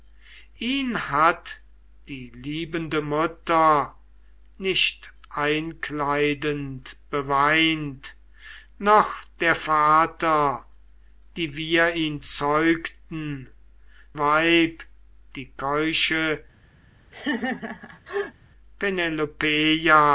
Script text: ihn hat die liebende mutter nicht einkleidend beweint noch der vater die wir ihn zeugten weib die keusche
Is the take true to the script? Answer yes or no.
yes